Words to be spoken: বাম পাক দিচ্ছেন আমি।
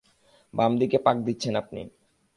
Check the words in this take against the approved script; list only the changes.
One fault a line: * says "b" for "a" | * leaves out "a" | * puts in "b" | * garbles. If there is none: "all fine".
* puts in "দিকে"
* says "আপনি" for "আমি"